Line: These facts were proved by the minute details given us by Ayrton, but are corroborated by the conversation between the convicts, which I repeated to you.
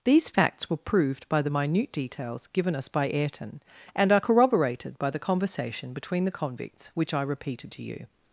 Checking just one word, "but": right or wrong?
wrong